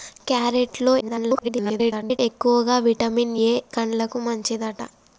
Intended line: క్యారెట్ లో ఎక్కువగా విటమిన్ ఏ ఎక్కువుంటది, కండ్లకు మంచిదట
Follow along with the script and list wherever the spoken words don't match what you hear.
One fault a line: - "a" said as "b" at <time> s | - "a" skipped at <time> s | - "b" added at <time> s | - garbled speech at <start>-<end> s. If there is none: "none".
- garbled speech at 1.0-2.2 s
- "ఎక్కువుంటది" skipped at 3.5 s